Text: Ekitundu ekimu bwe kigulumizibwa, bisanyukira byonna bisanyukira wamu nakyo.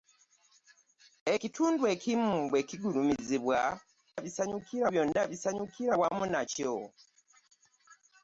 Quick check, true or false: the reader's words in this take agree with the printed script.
true